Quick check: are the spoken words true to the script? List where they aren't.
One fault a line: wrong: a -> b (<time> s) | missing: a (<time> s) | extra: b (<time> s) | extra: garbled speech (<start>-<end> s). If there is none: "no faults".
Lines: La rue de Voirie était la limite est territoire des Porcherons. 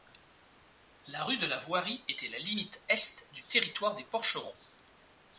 extra: la (1.5 s)
extra: du (3.3 s)